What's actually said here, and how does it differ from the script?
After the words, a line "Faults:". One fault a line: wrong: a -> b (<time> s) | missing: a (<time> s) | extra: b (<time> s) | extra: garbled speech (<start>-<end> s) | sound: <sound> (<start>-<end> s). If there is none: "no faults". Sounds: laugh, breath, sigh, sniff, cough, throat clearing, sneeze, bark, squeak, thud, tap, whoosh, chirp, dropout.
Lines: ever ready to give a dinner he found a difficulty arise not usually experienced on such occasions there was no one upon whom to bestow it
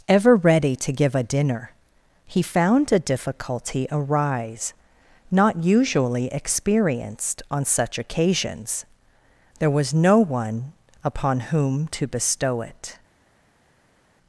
ever ready to give a dinner he found a difficulty arise not usually experienced on such occasions there was no one upon whom to bestow it
Faults:
no faults